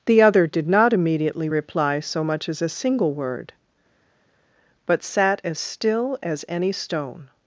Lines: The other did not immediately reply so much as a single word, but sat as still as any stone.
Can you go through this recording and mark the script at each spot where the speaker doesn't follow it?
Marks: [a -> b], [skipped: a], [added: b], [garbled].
The other did not immediately reply so much as a single word, but sat as still as any stone.